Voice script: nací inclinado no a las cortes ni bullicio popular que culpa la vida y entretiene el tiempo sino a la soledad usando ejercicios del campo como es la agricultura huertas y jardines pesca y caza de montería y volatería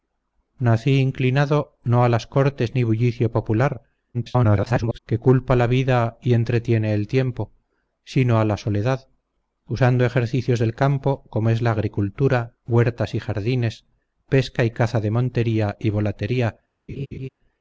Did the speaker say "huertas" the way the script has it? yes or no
yes